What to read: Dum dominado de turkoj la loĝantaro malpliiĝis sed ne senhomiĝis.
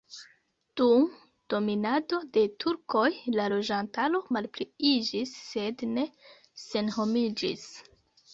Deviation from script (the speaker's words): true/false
false